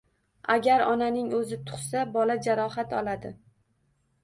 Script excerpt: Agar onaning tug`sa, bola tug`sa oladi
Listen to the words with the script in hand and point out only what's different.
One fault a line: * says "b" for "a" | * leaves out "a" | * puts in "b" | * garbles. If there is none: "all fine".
* puts in "o`zi"
* says "jarohat" for "tug`sa"